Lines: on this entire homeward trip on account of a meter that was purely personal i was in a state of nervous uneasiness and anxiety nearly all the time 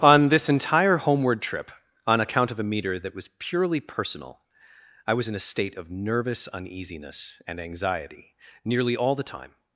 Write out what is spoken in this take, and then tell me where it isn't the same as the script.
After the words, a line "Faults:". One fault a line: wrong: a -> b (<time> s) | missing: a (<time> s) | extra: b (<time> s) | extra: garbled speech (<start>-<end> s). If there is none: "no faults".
on this entire homeward trip on account of a meter that was purely personal i was in a state of nervous uneasiness and anxiety nearly all the time
Faults:
no faults